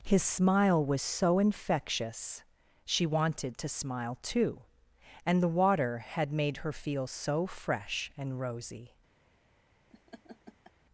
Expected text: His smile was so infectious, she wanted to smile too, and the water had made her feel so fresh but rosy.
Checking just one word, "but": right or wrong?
wrong